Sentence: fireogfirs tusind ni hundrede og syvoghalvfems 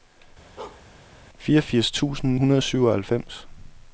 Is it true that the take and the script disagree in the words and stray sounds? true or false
true